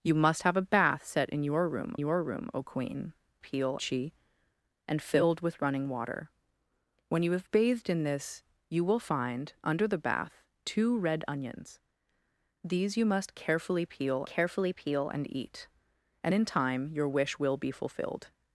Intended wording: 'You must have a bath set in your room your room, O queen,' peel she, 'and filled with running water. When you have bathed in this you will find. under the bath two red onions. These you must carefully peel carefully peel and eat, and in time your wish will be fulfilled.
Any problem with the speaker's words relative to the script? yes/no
no